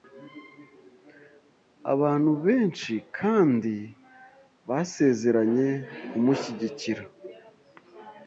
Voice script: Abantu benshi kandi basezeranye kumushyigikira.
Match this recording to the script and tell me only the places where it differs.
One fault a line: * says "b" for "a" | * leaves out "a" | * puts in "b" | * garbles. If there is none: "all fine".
all fine